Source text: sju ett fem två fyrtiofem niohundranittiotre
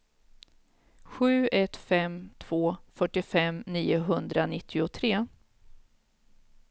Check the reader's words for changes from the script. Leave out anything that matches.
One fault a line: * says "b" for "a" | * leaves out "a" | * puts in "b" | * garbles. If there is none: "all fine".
all fine